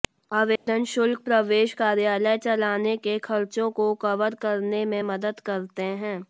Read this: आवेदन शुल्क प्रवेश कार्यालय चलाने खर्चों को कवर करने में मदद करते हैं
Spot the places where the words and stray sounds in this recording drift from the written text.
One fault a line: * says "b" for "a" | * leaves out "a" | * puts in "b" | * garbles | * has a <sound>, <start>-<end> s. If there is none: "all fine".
* has a dropout, 0.6-0.7 s
* puts in "के"